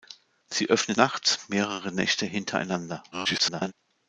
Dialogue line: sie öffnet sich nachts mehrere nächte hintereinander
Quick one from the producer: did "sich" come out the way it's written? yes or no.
no